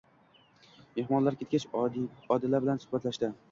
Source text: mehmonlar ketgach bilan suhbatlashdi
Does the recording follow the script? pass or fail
fail